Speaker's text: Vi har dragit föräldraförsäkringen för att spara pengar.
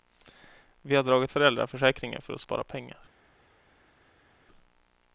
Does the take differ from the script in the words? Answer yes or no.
no